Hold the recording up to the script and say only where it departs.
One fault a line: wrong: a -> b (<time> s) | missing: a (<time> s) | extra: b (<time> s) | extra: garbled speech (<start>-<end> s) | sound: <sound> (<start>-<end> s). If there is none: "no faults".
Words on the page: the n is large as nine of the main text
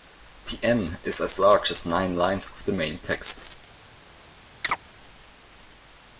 extra: as (1.2 s)
extra: lines (2.2 s)
sound: chirp (4.6-4.8 s)